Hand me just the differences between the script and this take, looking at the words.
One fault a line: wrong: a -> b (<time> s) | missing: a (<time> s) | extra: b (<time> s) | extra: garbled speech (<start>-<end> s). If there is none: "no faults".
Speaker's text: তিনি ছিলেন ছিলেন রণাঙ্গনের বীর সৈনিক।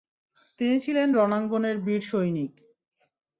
missing: ছিলেন (1.1 s)